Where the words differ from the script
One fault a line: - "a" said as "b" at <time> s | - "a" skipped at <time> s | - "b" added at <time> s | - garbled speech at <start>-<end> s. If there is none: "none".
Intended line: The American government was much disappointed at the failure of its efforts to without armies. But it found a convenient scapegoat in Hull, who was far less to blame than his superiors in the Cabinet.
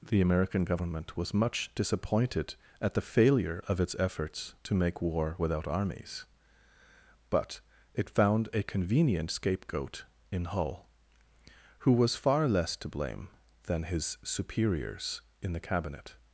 - "make war" added at 4.7 s